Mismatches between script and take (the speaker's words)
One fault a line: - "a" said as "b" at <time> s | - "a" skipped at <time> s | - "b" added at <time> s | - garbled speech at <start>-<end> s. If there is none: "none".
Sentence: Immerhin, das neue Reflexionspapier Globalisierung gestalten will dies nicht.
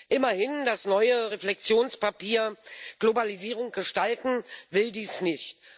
none